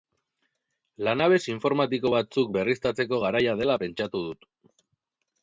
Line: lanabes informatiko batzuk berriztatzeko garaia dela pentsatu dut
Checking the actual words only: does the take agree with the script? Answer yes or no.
yes